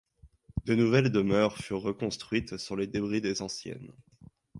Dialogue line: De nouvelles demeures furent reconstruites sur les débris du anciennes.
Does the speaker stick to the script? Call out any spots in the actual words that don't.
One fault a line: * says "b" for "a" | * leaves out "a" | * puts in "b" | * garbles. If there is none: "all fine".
* says "des" for "du"